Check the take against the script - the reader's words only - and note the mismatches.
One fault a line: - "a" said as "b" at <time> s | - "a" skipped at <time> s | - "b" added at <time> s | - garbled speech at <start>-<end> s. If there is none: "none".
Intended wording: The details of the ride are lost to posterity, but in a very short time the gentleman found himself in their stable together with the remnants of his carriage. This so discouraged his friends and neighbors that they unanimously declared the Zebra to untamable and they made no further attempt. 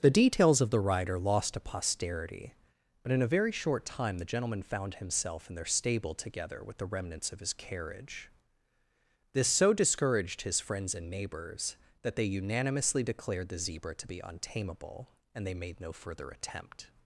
- "be" added at 14.1 s